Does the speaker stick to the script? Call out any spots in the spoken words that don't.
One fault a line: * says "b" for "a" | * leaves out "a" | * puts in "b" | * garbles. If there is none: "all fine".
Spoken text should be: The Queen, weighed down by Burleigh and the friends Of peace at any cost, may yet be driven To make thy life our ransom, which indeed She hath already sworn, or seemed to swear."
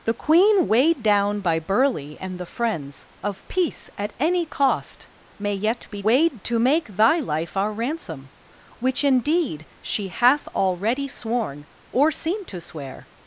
* says "weighed" for "driven"